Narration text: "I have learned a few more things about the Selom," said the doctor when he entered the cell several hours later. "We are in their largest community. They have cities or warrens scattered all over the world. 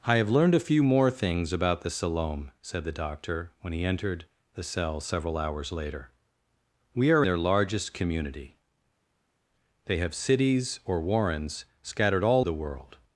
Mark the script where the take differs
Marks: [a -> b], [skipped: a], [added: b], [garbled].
"I have learned a few more things about the Selom," said the doctor when he entered the cell several hours later. "We are [skipped: in] their largest community. They have cities or warrens scattered all [skipped: over] the world.